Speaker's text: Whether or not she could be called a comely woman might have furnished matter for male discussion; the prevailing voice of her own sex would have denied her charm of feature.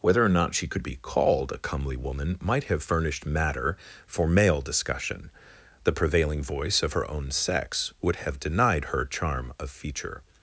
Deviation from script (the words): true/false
false